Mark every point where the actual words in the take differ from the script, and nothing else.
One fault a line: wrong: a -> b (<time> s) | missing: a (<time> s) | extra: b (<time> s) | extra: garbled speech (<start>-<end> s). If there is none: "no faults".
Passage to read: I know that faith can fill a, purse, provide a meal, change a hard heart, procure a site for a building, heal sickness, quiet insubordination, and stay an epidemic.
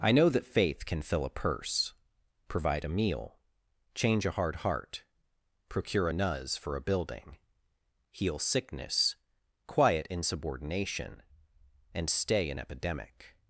wrong: site -> nuz (6.1 s)